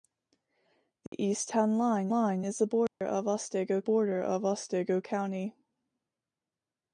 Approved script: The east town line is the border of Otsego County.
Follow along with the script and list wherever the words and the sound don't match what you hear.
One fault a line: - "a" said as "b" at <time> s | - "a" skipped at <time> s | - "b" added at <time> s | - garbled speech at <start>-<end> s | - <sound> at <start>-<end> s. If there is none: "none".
- dropout at 1.1-1.1 s
- "line" added at 2.1 s
- dropout at 2.9-3.0 s
- "border of Otsego" added at 3.8 s